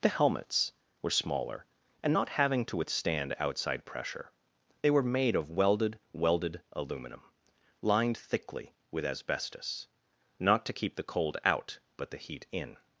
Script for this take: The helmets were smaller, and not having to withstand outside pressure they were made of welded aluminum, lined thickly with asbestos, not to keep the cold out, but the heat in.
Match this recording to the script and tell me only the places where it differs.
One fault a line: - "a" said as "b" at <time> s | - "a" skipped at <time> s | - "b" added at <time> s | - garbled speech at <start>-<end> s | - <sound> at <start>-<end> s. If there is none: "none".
- "welded" added at 6.1 s